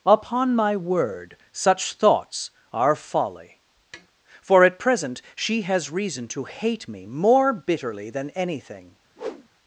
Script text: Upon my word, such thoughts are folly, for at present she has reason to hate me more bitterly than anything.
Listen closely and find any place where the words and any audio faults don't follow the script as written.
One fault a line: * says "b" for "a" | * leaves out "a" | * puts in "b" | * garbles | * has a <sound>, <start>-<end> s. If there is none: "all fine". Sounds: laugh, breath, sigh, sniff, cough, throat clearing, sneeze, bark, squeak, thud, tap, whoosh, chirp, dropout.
* has a tap, 3.9-4.1 s
* has a whoosh, 9.2-9.5 s